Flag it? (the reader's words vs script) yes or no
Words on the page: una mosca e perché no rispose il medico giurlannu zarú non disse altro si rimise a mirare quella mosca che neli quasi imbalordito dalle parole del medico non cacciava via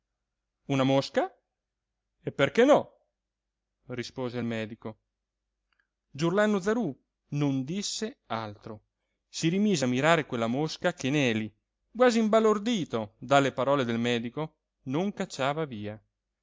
no